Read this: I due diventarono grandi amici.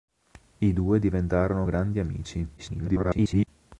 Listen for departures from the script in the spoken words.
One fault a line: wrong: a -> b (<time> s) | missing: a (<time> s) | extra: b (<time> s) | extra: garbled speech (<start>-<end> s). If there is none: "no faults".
extra: garbled speech (2.6-3.5 s)